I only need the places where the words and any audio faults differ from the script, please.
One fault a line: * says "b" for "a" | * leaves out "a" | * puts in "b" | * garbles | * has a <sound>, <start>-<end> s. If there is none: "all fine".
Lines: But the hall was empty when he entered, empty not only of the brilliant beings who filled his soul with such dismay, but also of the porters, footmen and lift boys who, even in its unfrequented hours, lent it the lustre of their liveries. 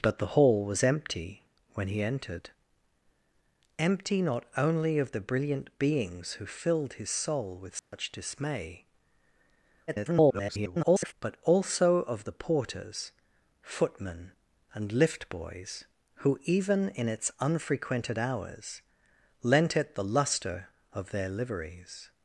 * has a dropout, 7.8-7.9 s
* garbles